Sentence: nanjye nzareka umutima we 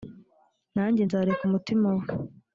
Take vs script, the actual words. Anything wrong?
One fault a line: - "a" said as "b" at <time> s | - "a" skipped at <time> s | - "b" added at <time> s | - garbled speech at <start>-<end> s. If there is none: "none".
none